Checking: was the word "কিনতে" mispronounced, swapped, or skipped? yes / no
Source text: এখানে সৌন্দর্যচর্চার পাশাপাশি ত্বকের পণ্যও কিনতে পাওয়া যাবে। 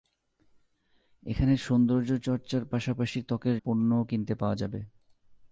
no